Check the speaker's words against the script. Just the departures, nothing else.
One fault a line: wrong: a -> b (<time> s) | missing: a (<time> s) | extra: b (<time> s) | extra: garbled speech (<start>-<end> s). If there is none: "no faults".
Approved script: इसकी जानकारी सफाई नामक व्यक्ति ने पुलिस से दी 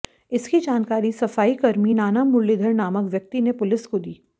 extra: कर्मी नाना मुरलीधर (1.6 s)
wrong: से -> को (3.9 s)